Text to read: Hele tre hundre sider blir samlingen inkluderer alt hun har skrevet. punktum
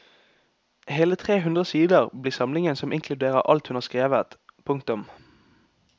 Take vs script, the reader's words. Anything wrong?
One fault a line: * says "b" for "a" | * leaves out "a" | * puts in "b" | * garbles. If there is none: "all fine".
* puts in "som"